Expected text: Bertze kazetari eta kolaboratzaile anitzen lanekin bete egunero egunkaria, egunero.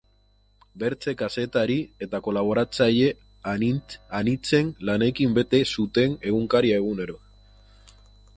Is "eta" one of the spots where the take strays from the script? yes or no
no